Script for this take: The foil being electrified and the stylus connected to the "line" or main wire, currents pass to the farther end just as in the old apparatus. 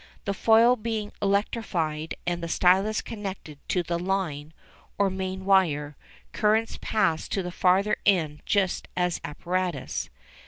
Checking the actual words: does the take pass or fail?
fail